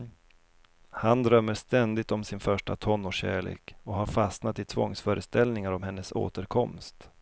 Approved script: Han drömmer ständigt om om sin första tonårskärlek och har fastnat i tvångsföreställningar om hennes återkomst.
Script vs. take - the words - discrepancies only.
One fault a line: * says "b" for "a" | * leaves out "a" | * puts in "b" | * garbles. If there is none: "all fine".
* leaves out "om"